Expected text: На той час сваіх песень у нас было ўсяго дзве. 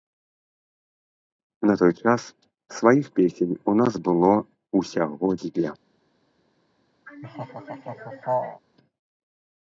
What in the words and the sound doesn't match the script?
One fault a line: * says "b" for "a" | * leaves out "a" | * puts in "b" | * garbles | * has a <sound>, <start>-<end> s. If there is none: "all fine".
* has a laugh, 7.1-8.6 s